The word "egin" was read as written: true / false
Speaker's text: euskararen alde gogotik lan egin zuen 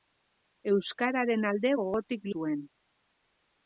false